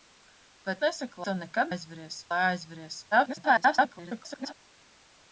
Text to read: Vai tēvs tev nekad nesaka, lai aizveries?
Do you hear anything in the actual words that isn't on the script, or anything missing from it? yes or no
yes